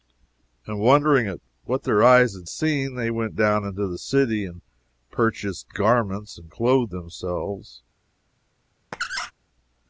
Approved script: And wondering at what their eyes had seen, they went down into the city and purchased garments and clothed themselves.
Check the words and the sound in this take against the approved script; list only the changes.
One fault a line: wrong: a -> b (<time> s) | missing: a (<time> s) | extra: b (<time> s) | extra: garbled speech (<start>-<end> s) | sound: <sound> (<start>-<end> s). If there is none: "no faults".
sound: squeak (8.9-9.3 s)